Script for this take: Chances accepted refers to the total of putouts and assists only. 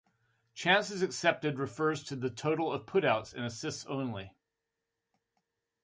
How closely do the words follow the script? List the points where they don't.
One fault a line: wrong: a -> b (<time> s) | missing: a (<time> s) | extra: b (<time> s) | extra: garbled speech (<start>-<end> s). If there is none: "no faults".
no faults